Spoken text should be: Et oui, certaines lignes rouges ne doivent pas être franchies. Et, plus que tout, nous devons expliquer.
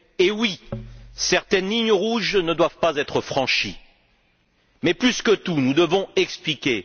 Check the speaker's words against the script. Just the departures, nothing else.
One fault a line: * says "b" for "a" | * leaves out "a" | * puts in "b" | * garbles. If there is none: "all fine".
* says "Mais" for "Et"